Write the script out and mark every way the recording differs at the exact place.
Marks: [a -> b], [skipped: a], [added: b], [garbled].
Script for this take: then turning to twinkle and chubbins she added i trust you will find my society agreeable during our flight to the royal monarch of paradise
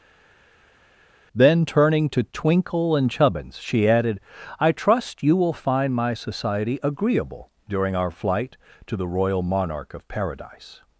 then turning to twinkle and chubbins she added i trust you will find my society agreeable during our flight to the royal monarch of paradise